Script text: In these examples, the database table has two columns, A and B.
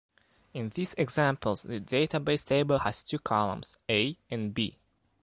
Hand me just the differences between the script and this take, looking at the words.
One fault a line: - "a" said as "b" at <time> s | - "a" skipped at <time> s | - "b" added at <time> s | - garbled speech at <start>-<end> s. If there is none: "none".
none